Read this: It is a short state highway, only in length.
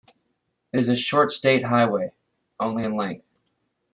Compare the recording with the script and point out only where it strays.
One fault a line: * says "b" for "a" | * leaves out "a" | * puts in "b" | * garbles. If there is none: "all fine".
all fine